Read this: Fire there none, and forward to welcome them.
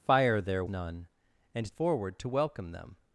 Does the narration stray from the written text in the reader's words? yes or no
no